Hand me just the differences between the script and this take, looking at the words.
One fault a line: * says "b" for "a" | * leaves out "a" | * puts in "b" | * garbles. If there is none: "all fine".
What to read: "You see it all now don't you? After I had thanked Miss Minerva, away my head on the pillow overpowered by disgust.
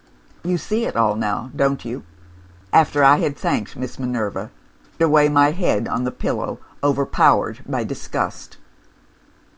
all fine